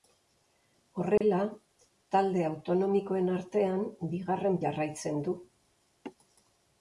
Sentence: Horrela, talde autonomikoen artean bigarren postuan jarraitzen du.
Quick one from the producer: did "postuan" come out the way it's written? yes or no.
no